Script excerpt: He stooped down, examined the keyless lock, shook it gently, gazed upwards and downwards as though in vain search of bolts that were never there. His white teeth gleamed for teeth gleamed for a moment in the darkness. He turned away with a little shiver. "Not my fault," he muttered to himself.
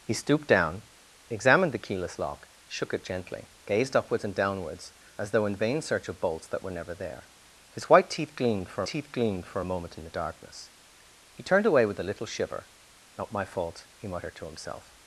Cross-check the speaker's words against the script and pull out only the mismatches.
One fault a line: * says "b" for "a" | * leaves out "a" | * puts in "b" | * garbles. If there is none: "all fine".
all fine